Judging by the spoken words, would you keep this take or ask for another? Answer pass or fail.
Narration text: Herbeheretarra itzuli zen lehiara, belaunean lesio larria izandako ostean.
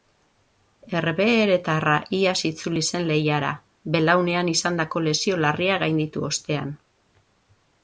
fail